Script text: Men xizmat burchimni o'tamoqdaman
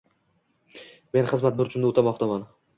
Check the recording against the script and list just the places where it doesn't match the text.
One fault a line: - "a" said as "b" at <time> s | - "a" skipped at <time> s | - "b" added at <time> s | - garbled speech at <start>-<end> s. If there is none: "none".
none